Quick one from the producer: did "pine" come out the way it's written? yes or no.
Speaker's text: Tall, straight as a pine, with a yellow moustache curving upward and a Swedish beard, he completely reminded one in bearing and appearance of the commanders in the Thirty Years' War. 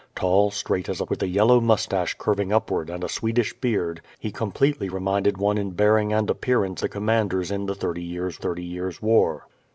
no